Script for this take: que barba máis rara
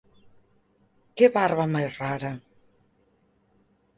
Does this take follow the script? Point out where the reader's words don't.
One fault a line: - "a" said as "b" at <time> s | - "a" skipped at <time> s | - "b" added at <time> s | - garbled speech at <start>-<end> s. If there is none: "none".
none